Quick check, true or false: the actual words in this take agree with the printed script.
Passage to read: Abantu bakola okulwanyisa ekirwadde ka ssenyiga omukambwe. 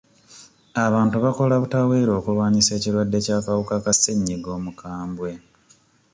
false